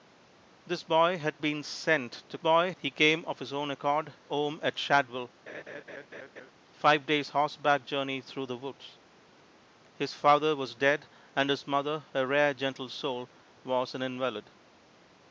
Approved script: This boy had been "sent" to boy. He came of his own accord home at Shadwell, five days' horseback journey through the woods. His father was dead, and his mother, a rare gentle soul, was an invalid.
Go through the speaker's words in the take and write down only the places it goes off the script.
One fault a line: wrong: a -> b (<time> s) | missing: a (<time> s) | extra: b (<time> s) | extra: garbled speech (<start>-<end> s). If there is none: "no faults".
no faults